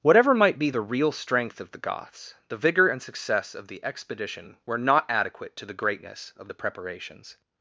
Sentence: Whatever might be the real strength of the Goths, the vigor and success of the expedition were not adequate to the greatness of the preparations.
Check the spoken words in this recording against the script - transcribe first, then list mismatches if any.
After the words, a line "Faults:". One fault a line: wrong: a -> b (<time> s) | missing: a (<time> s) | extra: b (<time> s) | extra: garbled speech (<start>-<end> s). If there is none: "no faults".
Whatever might be the real strength of the Goths, the vigor and success of the expedition were not adequate to the greatness of the preparations.
Faults:
no faults